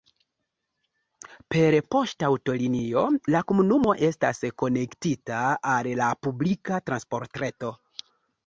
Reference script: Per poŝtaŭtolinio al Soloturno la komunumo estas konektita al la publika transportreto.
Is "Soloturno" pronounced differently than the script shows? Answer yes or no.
yes